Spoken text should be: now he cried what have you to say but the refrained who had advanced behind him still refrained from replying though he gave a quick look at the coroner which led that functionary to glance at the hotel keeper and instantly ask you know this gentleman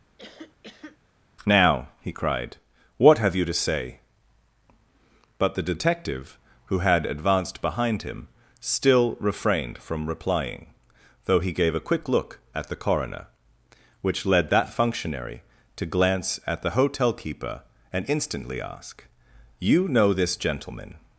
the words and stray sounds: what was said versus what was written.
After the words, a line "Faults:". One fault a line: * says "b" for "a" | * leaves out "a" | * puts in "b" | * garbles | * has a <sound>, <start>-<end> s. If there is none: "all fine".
now he cried what have you to say but the detective who had advanced behind him still refrained from replying though he gave a quick look at the coroner which led that functionary to glance at the hotel keeper and instantly ask you know this gentleman
Faults:
* has a cough, 0.2-1.0 s
* says "detective" for "refrained"